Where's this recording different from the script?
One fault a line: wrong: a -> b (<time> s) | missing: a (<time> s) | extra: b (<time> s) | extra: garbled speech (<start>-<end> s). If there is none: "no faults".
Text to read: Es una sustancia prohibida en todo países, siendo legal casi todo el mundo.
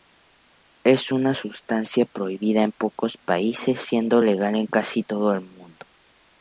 wrong: todo -> pocos (2.7 s)
extra: en (4.6 s)